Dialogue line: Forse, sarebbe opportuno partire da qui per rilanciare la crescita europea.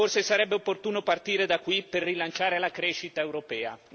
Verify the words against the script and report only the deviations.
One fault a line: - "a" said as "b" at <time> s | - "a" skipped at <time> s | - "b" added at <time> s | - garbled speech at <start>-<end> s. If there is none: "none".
none